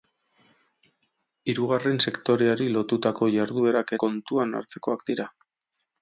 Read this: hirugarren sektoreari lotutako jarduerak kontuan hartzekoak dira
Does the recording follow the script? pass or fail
pass